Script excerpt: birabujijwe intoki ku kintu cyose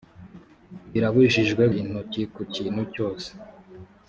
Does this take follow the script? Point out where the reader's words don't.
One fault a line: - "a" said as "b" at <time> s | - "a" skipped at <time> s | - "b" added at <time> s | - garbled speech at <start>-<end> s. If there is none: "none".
none